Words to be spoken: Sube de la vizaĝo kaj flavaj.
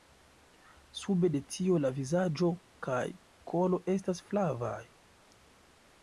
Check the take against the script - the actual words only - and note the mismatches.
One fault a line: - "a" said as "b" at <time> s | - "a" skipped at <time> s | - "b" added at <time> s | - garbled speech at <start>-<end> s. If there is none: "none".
- "tio" added at 1.6 s
- "kolo estas" added at 3.5 s